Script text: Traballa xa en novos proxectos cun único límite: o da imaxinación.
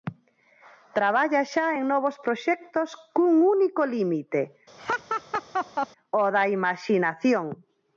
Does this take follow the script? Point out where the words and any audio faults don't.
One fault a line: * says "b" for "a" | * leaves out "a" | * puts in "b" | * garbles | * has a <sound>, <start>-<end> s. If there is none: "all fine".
* has a laugh, 4.8-5.9 s